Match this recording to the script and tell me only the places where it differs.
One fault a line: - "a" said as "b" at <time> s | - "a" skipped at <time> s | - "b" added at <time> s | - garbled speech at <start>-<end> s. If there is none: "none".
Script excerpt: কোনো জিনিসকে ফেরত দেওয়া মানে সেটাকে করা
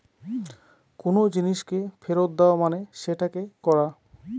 none